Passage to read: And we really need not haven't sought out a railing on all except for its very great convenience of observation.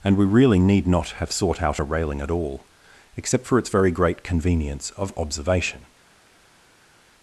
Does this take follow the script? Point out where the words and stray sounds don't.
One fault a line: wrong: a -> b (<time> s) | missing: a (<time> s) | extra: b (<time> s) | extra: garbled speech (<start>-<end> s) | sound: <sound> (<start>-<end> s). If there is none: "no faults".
wrong: haven't -> have (1.1 s)
wrong: on -> at (2.2 s)